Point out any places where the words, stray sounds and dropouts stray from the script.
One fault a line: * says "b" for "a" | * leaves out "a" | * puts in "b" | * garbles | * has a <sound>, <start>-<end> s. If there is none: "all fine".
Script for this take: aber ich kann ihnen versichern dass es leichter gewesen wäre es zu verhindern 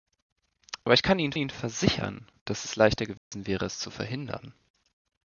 * puts in "ihnen"
* has a dropout, 3.2-3.3 s